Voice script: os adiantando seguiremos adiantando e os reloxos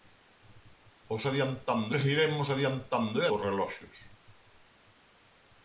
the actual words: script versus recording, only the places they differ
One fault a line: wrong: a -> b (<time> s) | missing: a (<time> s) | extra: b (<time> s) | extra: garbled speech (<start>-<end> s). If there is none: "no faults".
no faults